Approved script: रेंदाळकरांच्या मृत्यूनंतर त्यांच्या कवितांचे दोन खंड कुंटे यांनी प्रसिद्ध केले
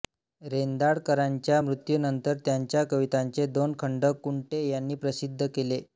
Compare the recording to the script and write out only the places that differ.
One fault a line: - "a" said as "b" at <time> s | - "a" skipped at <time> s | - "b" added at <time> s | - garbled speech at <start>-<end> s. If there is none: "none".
none